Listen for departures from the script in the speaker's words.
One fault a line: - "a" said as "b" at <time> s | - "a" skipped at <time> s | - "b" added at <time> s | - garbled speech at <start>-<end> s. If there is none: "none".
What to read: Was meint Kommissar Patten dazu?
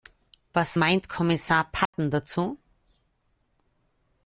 none